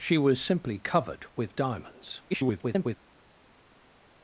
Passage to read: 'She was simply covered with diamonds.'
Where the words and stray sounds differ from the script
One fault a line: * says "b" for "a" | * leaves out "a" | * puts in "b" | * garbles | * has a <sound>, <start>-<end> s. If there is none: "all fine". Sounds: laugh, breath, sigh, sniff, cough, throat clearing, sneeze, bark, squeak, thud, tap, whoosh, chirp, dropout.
* garbles